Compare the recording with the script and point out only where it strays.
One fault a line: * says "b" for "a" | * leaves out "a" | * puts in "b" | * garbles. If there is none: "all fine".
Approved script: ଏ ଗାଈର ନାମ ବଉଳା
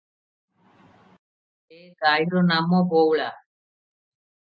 all fine